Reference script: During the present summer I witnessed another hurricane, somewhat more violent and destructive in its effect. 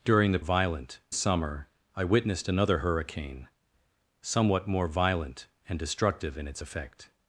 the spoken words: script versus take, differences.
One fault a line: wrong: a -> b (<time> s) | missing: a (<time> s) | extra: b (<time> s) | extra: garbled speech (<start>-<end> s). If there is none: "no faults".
wrong: present -> violent (0.4 s)